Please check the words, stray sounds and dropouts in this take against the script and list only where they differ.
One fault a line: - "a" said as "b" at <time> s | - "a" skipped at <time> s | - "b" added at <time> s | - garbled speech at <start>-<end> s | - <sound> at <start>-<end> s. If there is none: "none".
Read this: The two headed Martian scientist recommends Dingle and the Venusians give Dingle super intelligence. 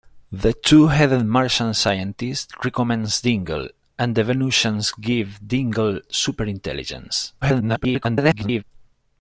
- garbled speech at 7.4-8.6 s